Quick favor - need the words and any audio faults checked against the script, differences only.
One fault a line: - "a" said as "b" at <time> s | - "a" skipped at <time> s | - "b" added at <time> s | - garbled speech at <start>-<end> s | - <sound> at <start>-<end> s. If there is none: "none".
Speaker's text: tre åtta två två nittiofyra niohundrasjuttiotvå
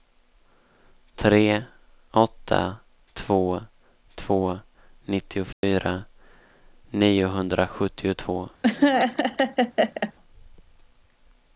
- dropout at 5.5-5.6 s
- laugh at 8.6-10.1 s